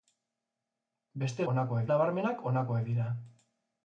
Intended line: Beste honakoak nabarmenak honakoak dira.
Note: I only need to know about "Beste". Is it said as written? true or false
true